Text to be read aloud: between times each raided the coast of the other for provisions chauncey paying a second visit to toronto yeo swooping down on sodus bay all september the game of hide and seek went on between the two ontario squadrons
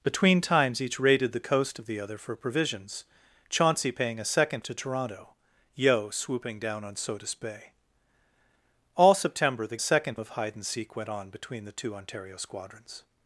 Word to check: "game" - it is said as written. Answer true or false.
false